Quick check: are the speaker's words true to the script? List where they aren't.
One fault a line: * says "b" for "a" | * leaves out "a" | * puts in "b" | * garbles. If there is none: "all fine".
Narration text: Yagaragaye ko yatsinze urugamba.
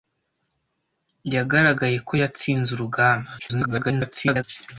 * garbles